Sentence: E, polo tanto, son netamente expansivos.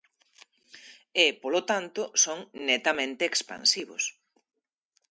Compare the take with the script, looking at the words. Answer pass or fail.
pass